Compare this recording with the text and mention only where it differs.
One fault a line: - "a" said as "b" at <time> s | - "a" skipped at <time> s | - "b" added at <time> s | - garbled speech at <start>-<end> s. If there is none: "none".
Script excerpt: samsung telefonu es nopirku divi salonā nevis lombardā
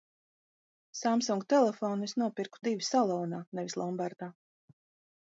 none